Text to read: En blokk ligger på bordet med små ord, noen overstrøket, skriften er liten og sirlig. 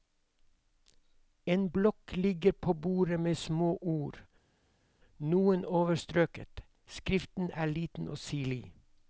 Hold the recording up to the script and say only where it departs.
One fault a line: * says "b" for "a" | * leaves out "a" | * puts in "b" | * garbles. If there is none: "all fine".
all fine